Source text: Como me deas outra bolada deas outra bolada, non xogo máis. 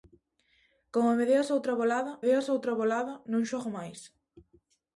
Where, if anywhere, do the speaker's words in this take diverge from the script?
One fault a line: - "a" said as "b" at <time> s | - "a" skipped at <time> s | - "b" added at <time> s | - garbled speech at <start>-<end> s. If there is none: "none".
none